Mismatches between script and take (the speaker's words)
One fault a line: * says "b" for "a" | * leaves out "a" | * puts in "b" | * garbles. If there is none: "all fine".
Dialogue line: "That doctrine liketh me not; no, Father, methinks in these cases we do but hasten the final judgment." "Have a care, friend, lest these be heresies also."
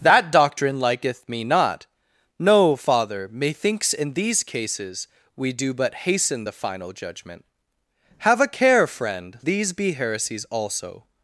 * leaves out "lest"